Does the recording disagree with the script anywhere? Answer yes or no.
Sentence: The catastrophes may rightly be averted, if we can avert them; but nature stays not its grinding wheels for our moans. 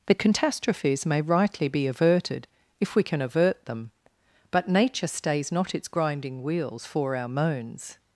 no